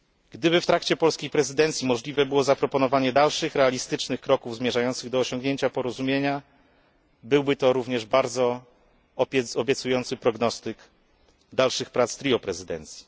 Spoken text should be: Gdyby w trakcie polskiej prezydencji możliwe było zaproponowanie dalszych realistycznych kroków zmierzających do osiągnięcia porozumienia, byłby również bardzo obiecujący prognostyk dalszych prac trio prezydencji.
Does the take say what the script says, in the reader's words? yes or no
no